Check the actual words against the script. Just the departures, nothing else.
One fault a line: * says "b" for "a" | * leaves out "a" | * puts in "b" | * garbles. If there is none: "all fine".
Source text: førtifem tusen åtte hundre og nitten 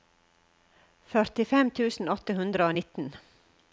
all fine